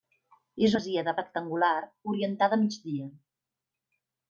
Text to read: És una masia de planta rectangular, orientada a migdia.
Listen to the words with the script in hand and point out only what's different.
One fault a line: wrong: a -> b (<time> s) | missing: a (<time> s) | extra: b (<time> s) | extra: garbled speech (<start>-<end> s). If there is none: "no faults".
missing: una (0.8 s)
missing: planta (1.1 s)